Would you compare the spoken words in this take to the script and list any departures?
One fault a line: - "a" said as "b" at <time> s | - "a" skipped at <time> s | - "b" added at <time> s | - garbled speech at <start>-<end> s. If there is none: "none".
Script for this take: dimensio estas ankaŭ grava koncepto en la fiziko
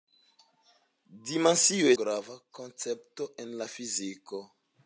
- "estas ankaŭ" skipped at 1.9 s